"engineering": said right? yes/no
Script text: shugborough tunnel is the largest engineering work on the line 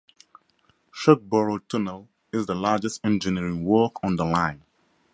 yes